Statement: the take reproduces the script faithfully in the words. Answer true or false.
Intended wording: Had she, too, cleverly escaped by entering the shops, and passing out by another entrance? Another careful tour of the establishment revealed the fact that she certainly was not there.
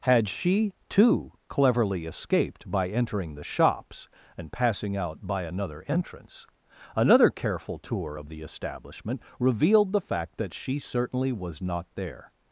true